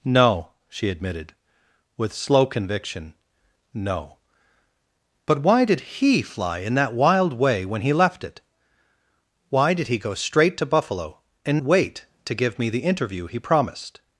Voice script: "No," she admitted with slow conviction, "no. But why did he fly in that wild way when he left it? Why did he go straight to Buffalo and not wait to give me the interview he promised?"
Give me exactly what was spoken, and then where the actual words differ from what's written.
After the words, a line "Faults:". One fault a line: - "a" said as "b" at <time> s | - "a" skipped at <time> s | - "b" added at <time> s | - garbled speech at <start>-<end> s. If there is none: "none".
"No," she admitted with slow conviction, "no. But why did he fly in that wild way when he left it? Why did he go straight to Buffalo and wait to give me the interview he promised?"
Faults:
- "not" skipped at 11.6 s